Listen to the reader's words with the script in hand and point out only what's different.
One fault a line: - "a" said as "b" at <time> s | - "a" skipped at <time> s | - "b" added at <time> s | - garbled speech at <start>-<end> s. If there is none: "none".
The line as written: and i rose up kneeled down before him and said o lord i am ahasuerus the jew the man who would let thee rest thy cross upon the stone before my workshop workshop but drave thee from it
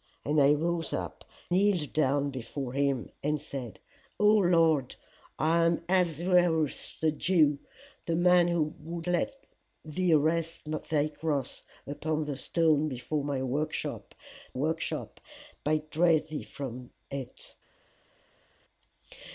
none